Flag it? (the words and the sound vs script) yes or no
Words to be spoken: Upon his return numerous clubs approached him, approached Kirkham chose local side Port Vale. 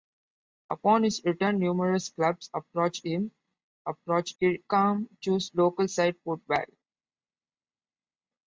no